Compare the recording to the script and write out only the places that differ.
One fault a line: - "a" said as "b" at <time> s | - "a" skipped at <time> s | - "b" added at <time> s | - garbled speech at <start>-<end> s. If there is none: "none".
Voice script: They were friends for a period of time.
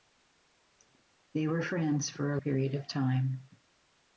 none